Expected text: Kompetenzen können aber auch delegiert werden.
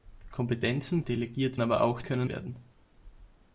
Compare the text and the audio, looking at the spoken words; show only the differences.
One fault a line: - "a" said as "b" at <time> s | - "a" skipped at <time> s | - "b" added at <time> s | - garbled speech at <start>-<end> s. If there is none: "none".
- "können" said as "delegiert" at 1.0 s
- "delegiert" said as "können" at 2.0 s